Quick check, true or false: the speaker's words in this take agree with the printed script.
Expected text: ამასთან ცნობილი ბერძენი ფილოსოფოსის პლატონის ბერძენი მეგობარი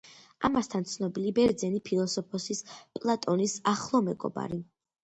false